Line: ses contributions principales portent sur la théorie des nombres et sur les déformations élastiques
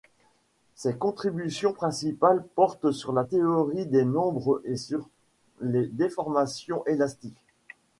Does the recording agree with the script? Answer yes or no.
yes